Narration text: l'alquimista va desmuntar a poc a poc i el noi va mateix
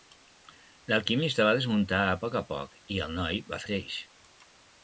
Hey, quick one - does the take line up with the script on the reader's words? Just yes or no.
yes